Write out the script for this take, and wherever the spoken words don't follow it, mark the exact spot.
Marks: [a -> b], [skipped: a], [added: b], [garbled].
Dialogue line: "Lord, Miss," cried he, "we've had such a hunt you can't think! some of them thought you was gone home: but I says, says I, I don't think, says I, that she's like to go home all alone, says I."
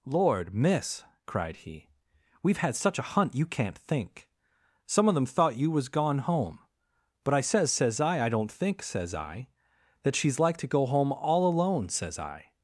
"Lord, Miss," cried he, "we've had such a hunt you can't think! some of them thought you was gone home: but I says, says I, I don't think, says I, that she's like to go home all alone, says I."